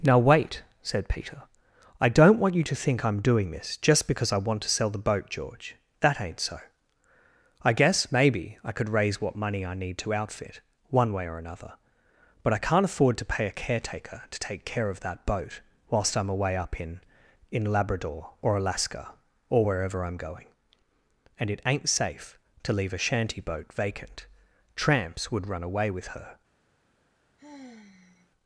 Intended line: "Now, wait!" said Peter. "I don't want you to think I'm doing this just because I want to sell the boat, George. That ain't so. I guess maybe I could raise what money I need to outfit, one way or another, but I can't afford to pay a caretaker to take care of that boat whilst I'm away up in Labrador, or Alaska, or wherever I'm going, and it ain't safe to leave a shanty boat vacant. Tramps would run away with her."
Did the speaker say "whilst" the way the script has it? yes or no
yes